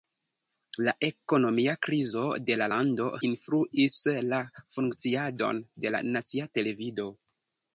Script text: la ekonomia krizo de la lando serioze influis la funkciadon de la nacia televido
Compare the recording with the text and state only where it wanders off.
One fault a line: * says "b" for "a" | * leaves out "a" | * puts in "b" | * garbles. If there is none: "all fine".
* leaves out "serioze"